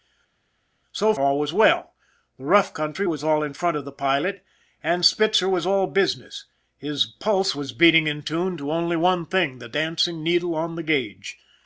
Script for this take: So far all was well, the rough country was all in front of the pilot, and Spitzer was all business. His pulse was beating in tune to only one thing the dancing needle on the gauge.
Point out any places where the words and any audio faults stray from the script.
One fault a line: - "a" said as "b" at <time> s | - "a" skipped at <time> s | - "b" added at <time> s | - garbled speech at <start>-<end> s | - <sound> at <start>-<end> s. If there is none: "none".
- "far" skipped at 1.1 s